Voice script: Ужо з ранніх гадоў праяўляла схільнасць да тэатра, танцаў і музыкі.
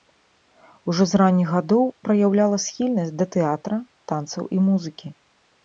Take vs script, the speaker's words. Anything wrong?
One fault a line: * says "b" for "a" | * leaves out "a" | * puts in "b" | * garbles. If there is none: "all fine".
all fine